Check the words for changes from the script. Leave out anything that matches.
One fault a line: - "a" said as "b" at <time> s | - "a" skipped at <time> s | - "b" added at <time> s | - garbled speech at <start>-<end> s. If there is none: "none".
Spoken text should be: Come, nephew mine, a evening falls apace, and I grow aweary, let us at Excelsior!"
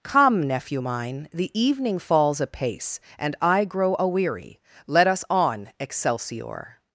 - "a" said as "the" at 1.3 s
- "at" said as "on" at 5.3 s